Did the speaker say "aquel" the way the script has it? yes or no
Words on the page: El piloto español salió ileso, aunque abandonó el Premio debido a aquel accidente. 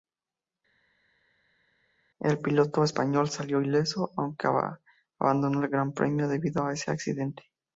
no